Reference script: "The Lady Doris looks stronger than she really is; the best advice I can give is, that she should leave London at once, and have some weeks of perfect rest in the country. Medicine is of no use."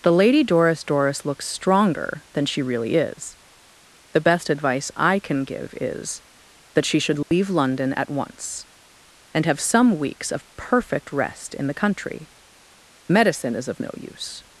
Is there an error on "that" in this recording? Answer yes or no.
no